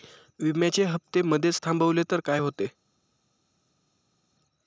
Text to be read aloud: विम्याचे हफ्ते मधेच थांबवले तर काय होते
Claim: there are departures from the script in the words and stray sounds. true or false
false